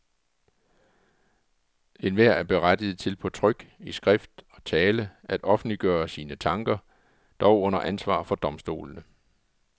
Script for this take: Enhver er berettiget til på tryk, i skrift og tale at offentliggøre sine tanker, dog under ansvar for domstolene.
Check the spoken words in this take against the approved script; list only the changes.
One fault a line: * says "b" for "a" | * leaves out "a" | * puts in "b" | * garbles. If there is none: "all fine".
all fine